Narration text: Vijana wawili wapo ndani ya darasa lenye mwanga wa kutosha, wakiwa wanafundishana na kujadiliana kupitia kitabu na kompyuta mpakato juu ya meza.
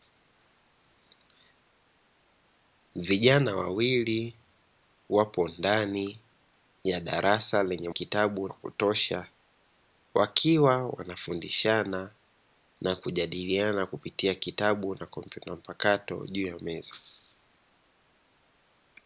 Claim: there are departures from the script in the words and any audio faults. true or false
true